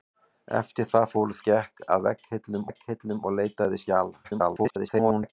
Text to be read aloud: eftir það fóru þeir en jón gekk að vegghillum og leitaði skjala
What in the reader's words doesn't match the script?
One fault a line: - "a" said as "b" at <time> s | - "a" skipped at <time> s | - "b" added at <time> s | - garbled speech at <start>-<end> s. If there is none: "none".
- "þeir en jón" skipped at 1.4 s
- "vegghillum" added at 2.7 s
- garbled speech at 4.2-5.3 s